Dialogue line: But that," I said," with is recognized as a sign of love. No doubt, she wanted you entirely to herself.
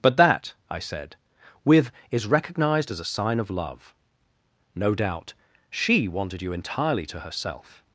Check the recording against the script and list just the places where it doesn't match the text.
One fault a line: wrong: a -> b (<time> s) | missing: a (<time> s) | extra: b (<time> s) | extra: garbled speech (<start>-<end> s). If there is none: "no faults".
no faults